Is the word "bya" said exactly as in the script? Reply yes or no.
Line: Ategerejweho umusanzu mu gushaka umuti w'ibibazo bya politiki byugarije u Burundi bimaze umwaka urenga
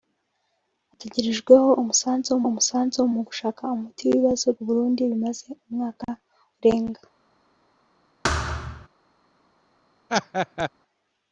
no